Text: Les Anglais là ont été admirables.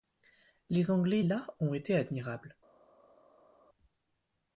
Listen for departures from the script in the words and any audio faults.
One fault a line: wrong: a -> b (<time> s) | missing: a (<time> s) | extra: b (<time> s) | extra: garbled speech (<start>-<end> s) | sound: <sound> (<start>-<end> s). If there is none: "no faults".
no faults